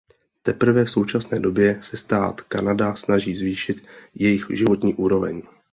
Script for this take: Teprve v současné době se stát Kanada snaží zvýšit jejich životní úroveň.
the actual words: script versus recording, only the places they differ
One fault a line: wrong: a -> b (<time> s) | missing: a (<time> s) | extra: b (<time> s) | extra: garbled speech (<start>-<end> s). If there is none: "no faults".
no faults